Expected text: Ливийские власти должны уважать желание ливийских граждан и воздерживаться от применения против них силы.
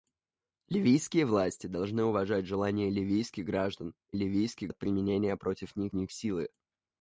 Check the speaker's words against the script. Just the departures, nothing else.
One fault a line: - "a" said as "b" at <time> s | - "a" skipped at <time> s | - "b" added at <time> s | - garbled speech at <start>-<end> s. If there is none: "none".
- "воздерживаться" said as "ливийских" at 4.1 s
- "них" added at 5.9 s